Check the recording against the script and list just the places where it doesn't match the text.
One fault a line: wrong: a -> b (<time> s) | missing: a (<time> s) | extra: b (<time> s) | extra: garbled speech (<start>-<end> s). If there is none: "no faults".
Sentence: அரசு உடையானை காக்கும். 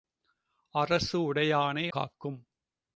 no faults